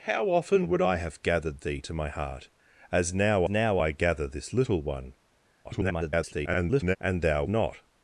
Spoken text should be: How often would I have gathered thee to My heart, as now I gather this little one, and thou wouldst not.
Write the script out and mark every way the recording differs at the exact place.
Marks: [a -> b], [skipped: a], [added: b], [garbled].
How often would I have gathered thee to My heart, as now [added: now] I gather this little one, [garbled] and thou [skipped: wouldst] not.